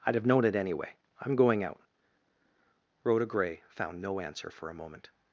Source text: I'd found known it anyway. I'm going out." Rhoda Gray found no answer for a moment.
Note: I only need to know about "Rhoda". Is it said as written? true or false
true